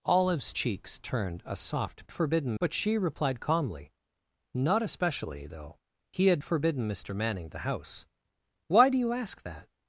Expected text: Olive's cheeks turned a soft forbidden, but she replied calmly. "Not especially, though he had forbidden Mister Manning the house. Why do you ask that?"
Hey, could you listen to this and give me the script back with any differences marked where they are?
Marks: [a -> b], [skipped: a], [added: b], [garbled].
Olive's cheeks turned a soft forbidden, but she replied calmly. "Not especially, though he had forbidden Mister Manning the house. Why do you ask that?"